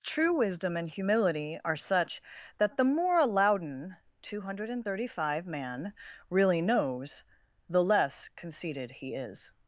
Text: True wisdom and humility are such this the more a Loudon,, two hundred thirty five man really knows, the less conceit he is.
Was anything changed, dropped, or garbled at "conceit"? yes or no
yes